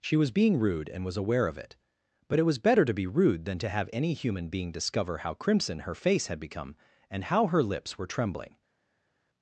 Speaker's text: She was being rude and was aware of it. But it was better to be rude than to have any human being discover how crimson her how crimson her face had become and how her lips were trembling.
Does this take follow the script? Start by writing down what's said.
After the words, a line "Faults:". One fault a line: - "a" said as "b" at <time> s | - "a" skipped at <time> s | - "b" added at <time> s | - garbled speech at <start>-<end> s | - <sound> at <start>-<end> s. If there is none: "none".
She was being rude and was aware of it. But it was better to be rude than to have any human being discover how crimson her face had become and how her lips were trembling.
Faults:
- "how crimson her" skipped at 5.9 s